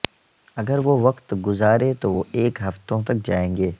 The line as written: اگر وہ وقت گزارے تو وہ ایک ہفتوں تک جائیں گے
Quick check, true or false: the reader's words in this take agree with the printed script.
true